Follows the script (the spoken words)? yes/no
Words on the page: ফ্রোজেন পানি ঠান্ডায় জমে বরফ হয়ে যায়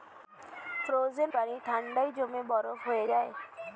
yes